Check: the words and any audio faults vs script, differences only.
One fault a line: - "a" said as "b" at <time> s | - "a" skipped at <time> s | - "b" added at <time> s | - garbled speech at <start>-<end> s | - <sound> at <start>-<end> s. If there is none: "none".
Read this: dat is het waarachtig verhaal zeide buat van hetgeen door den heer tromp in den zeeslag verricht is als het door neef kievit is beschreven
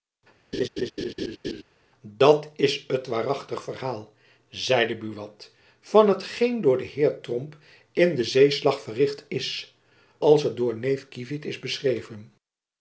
- laugh at 0.5-1.6 s